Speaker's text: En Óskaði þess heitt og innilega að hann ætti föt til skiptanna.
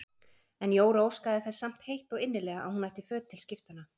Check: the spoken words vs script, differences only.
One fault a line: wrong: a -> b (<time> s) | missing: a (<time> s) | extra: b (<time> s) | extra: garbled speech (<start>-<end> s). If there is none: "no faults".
extra: Jóra (0.8 s)
extra: samt (1.6 s)
wrong: hann -> hún (2.8 s)